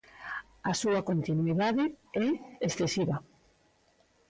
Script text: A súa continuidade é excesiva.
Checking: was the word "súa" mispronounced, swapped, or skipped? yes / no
no